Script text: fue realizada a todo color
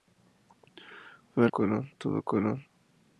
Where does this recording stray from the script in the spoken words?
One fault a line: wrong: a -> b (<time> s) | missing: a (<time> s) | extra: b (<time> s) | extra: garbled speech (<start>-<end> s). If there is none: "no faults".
wrong: realizada -> color (1.5 s)